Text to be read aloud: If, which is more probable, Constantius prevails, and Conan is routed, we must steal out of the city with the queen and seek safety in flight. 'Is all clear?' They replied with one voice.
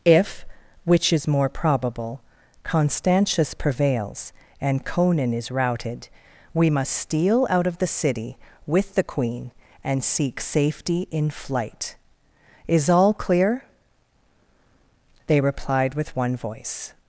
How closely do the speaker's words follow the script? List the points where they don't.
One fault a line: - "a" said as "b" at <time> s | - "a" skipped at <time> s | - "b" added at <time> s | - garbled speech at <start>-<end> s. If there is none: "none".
none